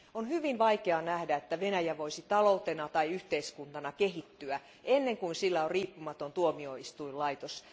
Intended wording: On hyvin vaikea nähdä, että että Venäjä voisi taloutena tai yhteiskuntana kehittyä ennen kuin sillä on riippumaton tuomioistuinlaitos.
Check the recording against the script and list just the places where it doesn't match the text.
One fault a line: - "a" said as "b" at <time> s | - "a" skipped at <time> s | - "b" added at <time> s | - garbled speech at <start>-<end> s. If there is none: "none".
- "että" skipped at 1.6 s